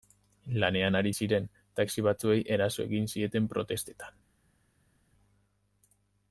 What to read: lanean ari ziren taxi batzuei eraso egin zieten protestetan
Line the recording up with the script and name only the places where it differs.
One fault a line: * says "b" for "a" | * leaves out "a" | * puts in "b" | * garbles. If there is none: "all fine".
all fine